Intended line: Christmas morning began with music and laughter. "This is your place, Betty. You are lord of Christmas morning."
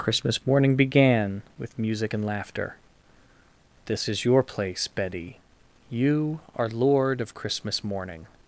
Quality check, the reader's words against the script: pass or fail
pass